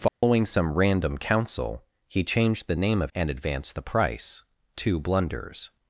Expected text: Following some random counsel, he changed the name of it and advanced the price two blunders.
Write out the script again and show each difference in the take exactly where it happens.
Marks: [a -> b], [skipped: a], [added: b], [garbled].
Following some random counsel, he changed the name of [skipped: it] and advanced the price two blunders.